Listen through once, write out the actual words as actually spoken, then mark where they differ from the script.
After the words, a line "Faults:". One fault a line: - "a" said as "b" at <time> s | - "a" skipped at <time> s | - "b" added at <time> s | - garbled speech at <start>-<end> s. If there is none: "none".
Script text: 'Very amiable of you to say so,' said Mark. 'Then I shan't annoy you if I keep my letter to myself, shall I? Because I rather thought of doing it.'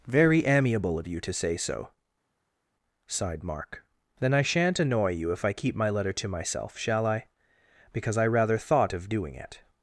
'Very amiable of you to say so,' sighed Mark. 'Then I shan't annoy you if I keep my letter to myself, shall I? Because I rather thought of doing it.'
Faults:
- "said" said as "sighed" at 3.1 s